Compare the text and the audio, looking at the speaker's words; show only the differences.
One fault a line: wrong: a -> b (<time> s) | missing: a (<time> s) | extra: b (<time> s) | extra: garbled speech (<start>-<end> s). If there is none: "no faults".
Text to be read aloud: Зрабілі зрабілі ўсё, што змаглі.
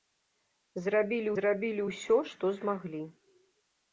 no faults